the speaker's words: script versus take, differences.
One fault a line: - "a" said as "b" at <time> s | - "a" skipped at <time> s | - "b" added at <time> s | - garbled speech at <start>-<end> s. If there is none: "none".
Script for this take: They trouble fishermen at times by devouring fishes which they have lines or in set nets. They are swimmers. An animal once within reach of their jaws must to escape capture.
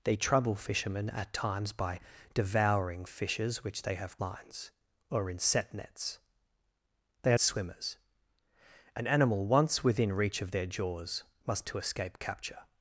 none